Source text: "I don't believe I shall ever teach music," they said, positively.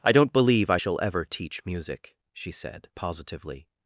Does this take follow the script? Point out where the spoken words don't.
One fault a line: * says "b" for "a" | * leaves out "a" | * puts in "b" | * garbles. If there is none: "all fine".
* says "she" for "they"